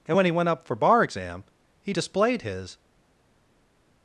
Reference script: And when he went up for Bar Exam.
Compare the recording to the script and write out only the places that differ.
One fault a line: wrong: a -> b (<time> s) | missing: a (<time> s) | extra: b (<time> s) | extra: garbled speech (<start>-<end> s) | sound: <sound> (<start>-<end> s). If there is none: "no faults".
extra: he displayed his (1.8 s)